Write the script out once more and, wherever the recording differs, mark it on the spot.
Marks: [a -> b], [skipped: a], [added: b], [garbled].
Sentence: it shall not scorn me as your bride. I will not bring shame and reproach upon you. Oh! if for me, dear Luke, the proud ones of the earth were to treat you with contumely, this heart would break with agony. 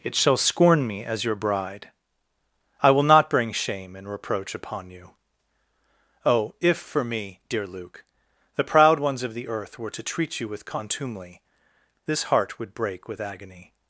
it shall [skipped: not] scorn me as your bride. I will not bring shame and reproach upon you. Oh! if for me, dear Luke, the proud ones of the earth were to treat you with contumely, this heart would break with agony.